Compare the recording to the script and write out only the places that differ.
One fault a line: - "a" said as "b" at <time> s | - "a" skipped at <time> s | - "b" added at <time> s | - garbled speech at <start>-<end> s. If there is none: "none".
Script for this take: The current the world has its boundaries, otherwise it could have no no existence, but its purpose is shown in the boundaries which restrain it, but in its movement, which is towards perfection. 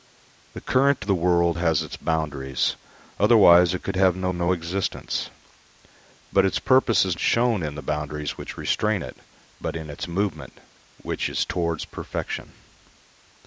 none